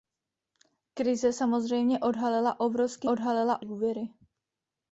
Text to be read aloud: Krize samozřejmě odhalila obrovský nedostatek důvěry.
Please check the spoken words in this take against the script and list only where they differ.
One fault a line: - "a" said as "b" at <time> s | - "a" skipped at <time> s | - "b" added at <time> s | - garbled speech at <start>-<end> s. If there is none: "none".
- "nedostatek" said as "odhalila" at 3.0 s